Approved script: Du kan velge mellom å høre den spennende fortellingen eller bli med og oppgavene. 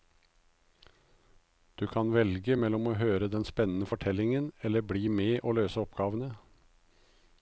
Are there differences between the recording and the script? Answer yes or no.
yes